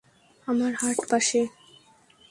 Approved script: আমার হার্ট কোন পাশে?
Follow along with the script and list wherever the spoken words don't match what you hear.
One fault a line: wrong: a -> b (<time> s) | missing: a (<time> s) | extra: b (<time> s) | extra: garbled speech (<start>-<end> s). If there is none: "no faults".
missing: কোন (1.0 s)